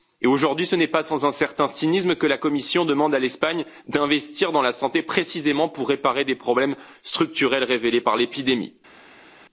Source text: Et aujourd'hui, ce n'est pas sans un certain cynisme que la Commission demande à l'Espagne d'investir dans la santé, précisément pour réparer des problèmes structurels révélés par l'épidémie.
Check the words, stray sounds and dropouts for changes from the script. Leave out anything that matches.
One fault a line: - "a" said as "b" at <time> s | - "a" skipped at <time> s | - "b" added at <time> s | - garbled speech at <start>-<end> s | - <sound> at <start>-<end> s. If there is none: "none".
none